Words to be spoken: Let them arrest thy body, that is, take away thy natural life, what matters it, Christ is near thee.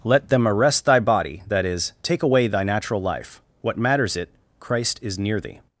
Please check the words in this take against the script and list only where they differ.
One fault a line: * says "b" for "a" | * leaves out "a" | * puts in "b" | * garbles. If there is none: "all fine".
all fine